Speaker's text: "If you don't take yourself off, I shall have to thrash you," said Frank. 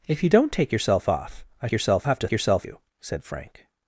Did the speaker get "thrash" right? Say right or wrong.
wrong